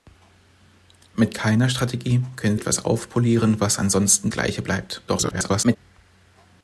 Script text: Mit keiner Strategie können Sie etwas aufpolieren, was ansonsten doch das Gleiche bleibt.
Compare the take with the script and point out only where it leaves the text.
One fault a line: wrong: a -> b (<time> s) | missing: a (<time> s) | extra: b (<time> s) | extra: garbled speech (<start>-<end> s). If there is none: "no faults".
missing: Sie (2.6 s)
missing: doch das (4.3 s)
extra: garbled speech (5.1-5.8 s)